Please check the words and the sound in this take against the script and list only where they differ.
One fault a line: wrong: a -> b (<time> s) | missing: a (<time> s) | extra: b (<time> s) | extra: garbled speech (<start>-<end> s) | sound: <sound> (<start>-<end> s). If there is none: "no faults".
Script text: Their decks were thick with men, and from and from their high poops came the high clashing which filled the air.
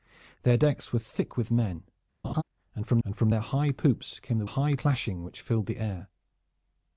sound: laugh (2.2-2.4 s)